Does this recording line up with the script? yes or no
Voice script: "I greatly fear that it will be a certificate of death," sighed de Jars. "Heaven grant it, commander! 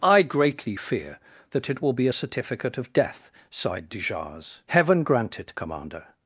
yes